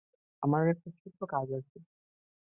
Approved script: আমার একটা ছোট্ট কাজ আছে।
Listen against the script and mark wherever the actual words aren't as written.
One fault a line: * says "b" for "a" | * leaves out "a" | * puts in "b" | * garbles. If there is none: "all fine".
all fine